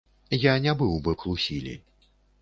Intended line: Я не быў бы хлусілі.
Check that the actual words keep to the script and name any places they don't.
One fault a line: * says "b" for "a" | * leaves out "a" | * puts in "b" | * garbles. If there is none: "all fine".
all fine